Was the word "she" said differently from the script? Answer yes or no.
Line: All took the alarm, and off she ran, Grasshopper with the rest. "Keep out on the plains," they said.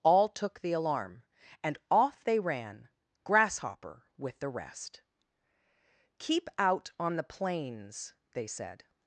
yes